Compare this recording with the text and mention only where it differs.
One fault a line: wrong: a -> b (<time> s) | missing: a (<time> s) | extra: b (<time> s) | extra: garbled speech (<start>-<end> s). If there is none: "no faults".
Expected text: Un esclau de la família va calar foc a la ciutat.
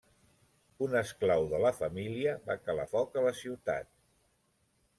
no faults